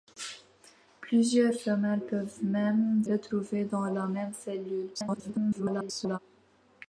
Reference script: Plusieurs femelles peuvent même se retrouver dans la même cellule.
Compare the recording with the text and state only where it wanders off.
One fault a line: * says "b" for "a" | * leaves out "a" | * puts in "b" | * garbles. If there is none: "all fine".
* leaves out "se"
* garbles